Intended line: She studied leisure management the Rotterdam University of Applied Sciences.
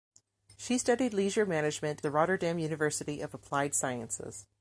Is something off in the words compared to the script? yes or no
no